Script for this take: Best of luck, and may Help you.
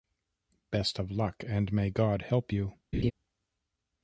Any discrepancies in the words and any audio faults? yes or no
yes